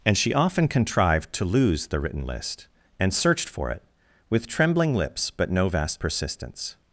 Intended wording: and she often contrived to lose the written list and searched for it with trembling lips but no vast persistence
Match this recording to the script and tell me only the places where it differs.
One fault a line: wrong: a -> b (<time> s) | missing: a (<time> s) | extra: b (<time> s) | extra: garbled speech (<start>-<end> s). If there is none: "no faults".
no faults